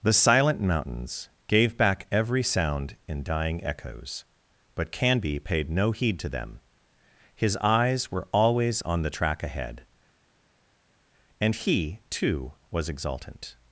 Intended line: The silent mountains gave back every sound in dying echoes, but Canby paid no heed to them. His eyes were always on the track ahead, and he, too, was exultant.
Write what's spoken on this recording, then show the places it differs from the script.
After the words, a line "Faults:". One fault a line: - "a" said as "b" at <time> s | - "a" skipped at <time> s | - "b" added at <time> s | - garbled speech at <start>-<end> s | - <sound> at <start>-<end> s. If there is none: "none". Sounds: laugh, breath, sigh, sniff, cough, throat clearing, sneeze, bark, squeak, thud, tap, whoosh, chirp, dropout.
The silent mountains gave back every sound in dying echoes, but Canby paid no heed to them. His eyes were always on the track ahead, and he, too, was exultant.
Faults:
none